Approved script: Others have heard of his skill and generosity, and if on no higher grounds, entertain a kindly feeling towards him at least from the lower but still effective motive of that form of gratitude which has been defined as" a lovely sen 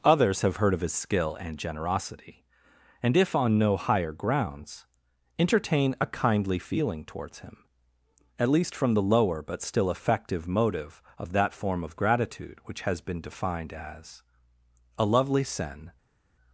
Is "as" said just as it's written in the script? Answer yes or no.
yes